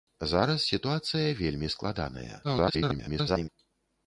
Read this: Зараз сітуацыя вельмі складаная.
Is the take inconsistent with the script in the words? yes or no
yes